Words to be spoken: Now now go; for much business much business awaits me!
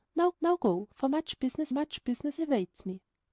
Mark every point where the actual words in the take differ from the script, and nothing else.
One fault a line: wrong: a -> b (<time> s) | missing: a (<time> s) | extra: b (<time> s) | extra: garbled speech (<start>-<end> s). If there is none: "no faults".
no faults